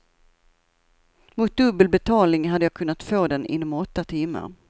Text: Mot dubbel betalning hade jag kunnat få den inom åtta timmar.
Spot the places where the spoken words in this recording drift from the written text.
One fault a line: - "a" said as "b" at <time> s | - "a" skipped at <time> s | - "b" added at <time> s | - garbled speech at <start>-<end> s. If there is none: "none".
none